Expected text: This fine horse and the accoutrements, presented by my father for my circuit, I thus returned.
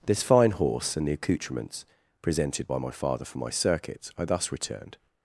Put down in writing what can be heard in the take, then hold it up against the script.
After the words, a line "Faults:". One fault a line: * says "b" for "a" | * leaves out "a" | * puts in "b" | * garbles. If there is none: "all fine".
This fine horse and the accoutrements, presented by my father for my circuit, I thus returned.
Faults:
all fine